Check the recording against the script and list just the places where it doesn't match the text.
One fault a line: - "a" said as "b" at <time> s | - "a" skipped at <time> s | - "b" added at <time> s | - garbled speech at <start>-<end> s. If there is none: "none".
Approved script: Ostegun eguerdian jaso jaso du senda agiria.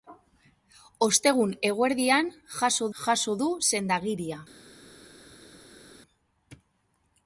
none